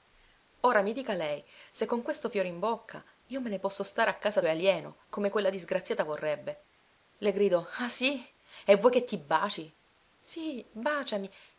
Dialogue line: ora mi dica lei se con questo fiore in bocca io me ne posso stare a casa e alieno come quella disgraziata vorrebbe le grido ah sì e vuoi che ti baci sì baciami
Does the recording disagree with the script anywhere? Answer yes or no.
no